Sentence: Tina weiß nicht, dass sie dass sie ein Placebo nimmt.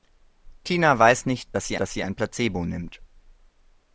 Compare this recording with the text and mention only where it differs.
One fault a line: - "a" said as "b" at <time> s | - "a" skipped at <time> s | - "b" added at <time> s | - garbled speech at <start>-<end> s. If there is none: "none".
none